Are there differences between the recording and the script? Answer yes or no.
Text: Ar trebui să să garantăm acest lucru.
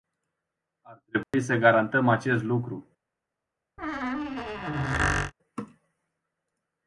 yes